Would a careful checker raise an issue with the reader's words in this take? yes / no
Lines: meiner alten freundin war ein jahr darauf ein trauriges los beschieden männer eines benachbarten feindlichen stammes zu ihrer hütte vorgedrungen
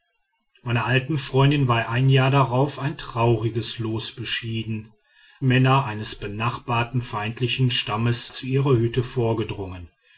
no